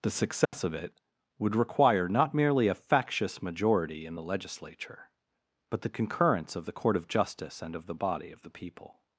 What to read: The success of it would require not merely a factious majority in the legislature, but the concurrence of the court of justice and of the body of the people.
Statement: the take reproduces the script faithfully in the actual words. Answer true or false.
true